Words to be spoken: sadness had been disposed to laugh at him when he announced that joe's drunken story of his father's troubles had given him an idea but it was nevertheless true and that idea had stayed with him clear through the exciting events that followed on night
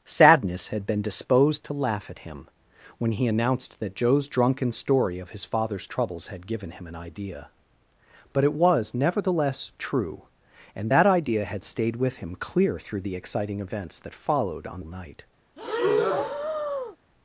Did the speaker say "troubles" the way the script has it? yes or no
yes